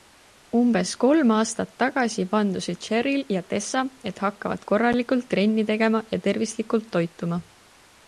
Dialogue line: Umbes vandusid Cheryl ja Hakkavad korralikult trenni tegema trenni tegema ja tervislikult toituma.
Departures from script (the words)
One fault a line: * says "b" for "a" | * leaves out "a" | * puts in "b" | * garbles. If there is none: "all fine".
* puts in "kolm aastat tagasi"
* puts in "Tessa et"
* leaves out "trenni tegema"